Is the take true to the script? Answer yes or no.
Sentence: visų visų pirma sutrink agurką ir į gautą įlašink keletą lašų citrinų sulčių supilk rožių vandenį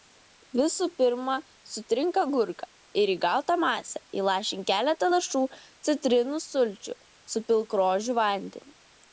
no